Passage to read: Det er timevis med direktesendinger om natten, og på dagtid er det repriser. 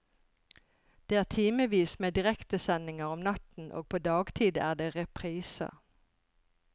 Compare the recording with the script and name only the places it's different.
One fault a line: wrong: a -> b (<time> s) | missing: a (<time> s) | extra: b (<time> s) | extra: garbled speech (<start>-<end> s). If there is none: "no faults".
no faults